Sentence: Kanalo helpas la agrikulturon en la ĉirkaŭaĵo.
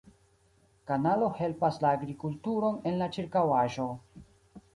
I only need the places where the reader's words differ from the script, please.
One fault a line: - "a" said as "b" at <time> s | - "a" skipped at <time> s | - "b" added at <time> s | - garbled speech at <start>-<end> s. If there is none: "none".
none